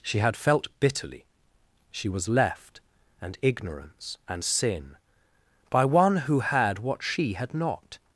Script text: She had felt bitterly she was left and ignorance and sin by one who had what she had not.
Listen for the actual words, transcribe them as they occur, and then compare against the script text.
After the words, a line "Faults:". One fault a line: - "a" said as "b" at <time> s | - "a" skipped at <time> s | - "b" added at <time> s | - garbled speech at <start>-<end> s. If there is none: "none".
She had felt bitterly she was left and ignorance and sin by one who had what she had not.
Faults:
none